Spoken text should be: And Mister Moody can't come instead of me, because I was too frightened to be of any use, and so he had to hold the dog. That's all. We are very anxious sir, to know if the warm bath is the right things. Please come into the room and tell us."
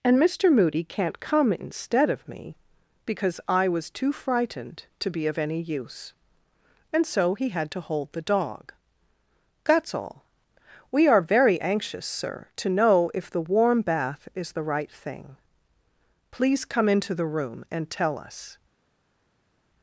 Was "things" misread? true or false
true